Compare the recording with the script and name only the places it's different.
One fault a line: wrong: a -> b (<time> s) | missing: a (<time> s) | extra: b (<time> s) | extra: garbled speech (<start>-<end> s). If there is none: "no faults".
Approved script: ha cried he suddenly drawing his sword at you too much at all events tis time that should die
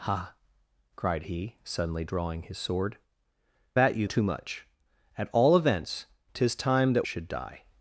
no faults